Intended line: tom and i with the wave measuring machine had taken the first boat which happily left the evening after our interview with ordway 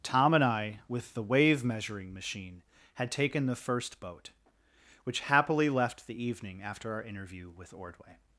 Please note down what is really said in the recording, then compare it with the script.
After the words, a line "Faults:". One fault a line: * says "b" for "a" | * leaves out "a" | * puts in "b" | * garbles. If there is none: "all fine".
tom and i with the wave measuring machine had taken the first boat which happily left the evening after our interview with ordway
Faults:
all fine